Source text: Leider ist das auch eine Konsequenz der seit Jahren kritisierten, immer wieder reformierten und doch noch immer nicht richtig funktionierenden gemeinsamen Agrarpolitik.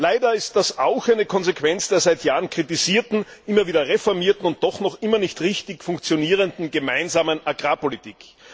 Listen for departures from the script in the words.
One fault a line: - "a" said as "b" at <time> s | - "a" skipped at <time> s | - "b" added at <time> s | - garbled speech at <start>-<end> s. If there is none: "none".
none